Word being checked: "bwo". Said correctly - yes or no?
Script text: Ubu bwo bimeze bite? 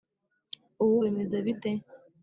no